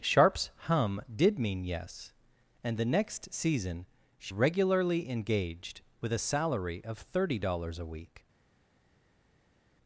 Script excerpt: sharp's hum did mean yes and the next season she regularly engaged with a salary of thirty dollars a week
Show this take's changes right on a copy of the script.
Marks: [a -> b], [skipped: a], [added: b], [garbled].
sharp's hum did mean yes and the next season she regularly engaged with a salary of thirty dollars a week